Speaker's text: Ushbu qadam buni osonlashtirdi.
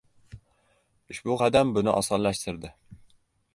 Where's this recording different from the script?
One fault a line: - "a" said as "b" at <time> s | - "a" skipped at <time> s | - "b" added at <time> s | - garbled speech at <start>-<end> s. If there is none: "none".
none